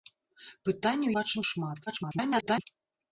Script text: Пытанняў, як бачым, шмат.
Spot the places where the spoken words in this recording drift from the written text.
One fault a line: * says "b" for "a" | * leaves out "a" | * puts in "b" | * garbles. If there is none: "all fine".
* leaves out "як"
* garbles